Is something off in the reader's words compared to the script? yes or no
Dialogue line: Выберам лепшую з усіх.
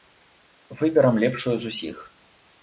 no